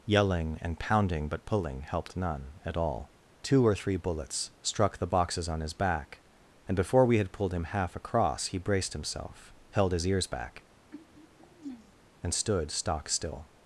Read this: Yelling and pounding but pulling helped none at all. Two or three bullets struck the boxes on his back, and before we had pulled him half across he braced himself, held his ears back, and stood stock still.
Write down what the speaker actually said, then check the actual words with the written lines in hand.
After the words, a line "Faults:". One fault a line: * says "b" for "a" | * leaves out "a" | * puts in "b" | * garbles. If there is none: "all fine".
Yelling and pounding but pulling helped none at all. Two or three bullets struck the boxes on his back, and before we had pulled him half across he braced himself, held his ears back, and stood stock still.
Faults:
all fine